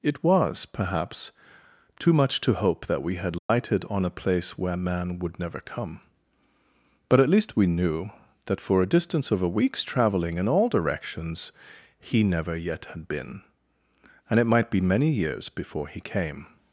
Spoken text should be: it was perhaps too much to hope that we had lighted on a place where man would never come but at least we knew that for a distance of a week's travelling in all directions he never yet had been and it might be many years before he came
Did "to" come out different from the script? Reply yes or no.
no